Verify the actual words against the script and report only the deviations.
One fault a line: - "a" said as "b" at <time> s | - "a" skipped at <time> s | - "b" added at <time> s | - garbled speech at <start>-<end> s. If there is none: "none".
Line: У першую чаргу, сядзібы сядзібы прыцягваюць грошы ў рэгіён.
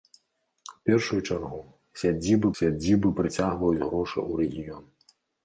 none